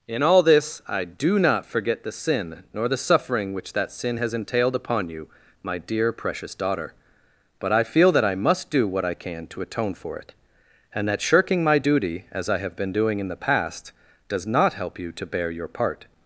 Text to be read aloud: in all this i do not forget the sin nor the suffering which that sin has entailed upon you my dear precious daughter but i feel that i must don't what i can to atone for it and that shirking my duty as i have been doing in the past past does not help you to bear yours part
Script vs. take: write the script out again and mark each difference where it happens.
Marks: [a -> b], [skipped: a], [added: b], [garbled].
in all this i do not forget the sin nor the suffering which that sin has entailed upon you my dear precious daughter but i feel that i must [don't -> do] what i can to atone for it and that shirking my duty as i have been doing in the past [skipped: past] does not help you to bear [yours -> your] part